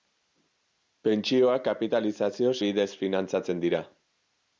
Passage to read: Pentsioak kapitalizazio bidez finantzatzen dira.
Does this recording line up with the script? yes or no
yes